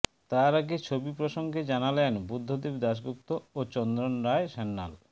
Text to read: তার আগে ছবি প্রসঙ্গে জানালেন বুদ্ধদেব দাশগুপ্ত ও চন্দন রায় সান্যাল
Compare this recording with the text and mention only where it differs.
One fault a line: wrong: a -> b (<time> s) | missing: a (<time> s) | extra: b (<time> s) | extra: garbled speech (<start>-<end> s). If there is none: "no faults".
no faults